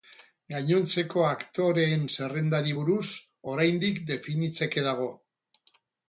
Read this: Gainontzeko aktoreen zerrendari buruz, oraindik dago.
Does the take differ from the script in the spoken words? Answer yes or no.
yes